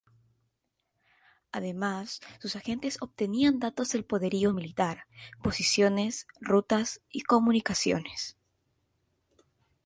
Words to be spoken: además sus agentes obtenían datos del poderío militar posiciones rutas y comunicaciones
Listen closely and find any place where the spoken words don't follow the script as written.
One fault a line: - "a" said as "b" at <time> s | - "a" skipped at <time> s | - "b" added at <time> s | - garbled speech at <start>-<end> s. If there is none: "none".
none